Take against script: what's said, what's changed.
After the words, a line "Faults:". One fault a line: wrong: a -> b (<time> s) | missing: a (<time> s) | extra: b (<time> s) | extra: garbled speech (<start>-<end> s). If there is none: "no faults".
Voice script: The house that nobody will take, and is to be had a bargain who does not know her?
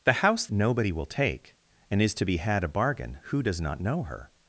The house nobody will take, and is to be had a bargain who does not know her?
Faults:
missing: that (0.5 s)